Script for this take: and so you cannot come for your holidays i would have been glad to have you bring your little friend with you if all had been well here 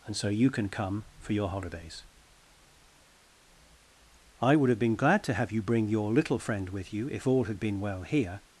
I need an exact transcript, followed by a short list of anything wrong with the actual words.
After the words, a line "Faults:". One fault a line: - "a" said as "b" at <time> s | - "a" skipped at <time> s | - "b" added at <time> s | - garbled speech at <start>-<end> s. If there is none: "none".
and so you can come for your holidays i would have been glad to have you bring your little friend with you if all had been well here
Faults:
- "cannot" said as "can" at 0.5 s